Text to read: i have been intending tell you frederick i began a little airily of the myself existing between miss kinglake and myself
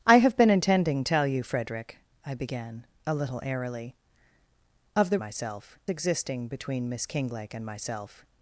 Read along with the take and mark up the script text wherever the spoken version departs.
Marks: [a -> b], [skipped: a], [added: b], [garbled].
i have been intending tell you frederick i began a little airily of the myself existing between miss kinglake and myself